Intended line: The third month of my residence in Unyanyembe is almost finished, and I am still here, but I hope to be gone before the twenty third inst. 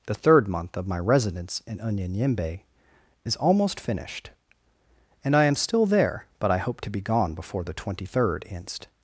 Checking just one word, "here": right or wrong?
wrong